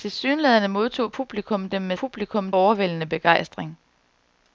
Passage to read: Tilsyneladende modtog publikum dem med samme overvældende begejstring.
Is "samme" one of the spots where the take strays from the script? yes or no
yes